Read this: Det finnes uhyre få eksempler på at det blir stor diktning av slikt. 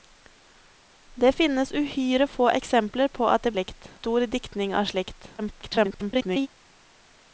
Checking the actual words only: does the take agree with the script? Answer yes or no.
no